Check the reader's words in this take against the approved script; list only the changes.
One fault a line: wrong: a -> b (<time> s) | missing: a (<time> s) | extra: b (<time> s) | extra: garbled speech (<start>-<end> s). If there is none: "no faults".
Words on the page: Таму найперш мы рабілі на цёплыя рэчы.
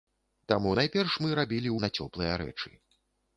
no faults